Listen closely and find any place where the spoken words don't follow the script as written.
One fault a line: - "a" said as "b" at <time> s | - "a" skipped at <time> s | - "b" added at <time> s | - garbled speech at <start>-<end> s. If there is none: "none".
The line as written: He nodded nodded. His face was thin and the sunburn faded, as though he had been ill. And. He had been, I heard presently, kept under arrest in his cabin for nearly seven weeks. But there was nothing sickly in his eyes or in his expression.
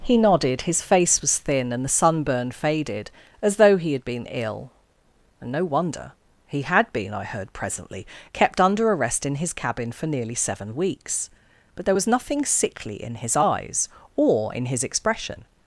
- "nodded" skipped at 0.6 s
- "no wonder" added at 5.5 s